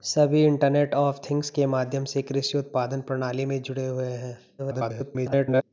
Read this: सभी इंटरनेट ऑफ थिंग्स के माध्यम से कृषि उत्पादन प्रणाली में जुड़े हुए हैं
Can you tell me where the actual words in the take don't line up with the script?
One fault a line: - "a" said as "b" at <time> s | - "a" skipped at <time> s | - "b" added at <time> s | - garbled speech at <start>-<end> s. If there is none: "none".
- garbled speech at 4.6-5.6 s